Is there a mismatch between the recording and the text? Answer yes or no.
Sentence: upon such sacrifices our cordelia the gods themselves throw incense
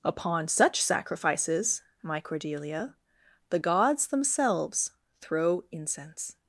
yes